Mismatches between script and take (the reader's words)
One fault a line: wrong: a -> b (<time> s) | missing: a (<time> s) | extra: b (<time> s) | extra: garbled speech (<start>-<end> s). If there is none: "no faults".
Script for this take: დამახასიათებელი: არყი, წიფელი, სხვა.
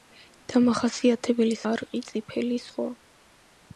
no faults